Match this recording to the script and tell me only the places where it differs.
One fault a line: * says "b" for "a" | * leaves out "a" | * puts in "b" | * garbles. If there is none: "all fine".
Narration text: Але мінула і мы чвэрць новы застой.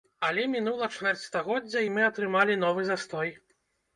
* puts in "чвэрць стагоддзя"
* says "атрымалі" for "чвэрць"